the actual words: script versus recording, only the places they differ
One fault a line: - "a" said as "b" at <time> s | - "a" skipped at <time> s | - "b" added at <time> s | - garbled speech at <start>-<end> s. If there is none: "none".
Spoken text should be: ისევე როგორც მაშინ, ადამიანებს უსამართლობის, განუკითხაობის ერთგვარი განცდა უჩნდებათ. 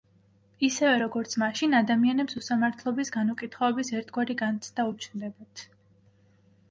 none